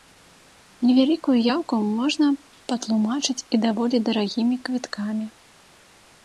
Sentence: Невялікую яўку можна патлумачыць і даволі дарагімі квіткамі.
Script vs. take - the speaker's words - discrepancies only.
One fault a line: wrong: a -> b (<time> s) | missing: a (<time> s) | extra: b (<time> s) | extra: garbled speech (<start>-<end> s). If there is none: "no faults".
no faults